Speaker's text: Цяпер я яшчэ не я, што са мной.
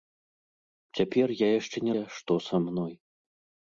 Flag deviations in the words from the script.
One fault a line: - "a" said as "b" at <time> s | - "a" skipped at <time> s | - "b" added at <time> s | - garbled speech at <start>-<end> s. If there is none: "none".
none